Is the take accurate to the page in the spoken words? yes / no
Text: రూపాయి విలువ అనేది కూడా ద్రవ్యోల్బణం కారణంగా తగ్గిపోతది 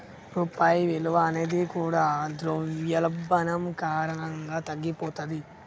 yes